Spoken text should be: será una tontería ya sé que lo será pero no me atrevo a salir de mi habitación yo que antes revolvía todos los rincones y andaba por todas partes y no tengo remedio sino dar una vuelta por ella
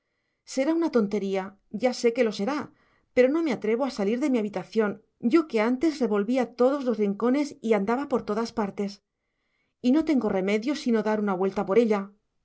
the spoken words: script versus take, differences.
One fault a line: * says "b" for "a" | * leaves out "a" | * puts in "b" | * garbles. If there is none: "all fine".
all fine